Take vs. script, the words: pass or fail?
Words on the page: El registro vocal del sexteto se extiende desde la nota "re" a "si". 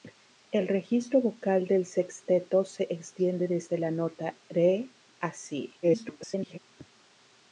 fail